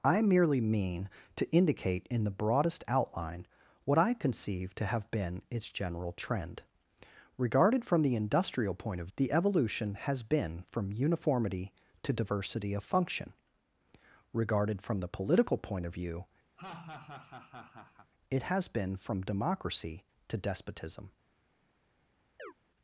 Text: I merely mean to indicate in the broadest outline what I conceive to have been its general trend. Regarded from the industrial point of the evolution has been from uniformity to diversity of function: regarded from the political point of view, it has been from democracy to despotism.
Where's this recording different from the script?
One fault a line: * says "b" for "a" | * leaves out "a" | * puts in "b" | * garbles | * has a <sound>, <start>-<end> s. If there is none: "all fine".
* has a laugh, 16.6-18.1 s
* has a chirp, 22.4-22.5 s